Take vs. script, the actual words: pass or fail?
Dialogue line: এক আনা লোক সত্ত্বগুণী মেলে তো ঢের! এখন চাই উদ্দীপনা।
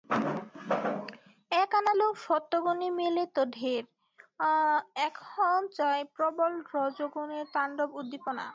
fail